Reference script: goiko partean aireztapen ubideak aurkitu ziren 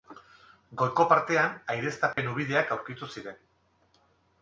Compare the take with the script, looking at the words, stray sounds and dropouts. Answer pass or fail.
fail